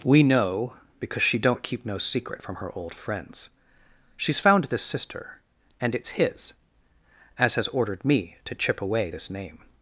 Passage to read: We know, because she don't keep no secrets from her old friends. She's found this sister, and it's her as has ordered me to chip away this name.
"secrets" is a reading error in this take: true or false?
true